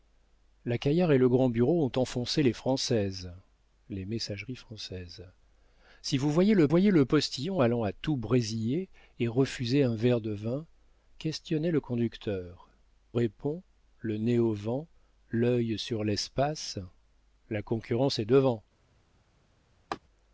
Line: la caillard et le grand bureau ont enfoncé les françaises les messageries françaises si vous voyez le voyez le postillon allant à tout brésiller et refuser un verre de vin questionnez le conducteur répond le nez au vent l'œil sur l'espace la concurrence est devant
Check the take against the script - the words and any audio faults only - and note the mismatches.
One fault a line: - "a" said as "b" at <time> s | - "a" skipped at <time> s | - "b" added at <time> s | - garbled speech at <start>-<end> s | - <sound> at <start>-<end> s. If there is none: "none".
- laugh at 19.9-20.0 s